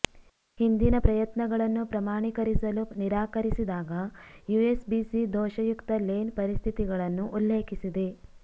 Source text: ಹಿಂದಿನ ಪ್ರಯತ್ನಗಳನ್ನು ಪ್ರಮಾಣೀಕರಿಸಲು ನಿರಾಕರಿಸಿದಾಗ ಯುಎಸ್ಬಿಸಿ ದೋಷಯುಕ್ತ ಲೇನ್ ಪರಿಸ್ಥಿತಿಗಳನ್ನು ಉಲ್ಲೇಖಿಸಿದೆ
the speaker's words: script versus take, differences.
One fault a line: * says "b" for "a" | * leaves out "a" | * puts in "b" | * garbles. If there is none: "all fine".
all fine